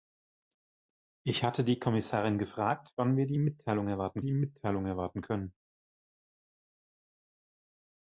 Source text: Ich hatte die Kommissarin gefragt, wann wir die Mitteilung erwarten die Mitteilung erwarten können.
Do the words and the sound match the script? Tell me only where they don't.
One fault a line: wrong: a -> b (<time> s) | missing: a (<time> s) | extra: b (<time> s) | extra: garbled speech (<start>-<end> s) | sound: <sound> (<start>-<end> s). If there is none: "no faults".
no faults